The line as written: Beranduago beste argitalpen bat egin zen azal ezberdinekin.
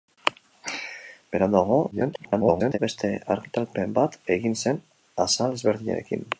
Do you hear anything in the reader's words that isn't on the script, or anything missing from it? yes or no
yes